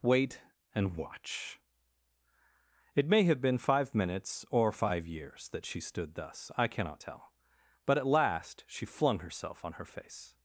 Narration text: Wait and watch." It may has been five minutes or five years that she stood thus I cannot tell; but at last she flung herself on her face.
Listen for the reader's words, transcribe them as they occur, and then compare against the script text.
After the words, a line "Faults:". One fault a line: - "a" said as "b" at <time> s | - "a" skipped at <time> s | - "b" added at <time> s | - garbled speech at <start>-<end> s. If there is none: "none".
Wait and watch." It may have been five minutes or five years that she stood thus I cannot tell; but at last she flung herself on her face.
Faults:
- "has" said as "have" at 3.2 s